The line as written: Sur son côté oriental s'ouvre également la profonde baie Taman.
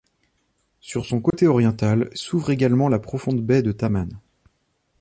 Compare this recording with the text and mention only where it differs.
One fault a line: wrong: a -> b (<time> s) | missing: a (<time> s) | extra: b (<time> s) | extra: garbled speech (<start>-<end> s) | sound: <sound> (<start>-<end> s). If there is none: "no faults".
sound: dropout (1.3-1.3 s)
extra: de (3.6 s)